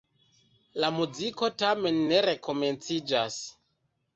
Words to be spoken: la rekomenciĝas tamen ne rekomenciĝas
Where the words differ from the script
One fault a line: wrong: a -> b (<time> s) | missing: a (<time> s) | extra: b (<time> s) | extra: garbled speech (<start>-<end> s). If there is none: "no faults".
wrong: rekomenciĝas -> muziko (0.9 s)